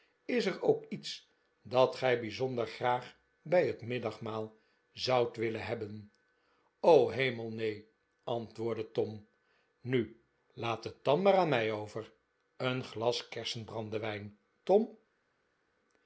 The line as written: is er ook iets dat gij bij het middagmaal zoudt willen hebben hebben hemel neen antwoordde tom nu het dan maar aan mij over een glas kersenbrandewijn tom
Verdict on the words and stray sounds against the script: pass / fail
fail